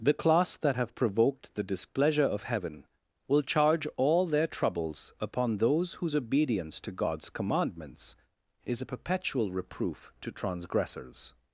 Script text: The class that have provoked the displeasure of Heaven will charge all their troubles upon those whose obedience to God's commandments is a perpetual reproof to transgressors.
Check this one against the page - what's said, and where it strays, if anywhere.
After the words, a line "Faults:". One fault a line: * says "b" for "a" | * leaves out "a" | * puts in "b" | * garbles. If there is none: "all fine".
The class that have provoked the displeasure of Heaven will charge all their troubles upon those whose obedience to God's commandments is a perpetual reproof to transgressors.
Faults:
all fine